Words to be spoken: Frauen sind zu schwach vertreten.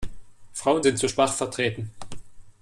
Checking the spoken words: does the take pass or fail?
pass